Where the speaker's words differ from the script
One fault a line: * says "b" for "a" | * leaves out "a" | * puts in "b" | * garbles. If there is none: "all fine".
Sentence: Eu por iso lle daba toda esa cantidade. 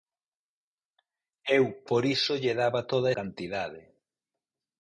* leaves out "esa"